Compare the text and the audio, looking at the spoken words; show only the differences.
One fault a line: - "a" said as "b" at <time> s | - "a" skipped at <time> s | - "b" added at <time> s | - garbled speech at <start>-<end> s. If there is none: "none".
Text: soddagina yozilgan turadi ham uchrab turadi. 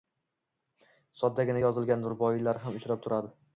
- "turadi" said as "ruboiylar" at 2.1 s